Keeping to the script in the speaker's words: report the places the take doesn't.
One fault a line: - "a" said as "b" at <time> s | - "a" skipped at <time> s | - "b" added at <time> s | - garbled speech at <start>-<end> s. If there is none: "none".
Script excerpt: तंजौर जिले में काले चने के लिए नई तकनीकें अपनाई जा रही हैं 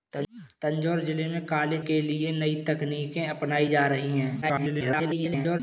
- "चने" skipped at 1.8 s
- garbled speech at 4.4-5.6 s